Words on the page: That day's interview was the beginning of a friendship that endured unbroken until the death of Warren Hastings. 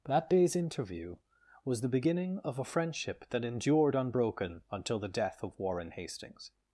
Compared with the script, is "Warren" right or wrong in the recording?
right